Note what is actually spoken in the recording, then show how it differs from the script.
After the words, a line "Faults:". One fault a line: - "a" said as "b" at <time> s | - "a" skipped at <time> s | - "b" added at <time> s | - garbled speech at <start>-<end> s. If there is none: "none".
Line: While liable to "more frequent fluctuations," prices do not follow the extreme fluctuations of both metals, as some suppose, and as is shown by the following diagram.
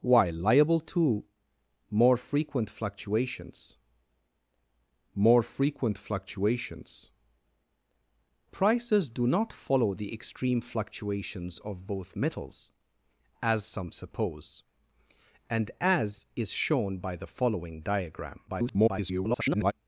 While liable to "more frequent fluctuations more frequent fluctuations," prices do not follow the extreme fluctuations of both metals, as some suppose, and as is shown by the following diagram. [garbled]
Faults:
- "more frequent fluctuations" added at 5.1 s
- garbled speech at 18.5-19.7 s